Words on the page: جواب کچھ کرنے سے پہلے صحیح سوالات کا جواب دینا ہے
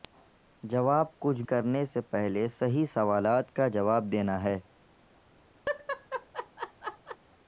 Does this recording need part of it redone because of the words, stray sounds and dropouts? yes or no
yes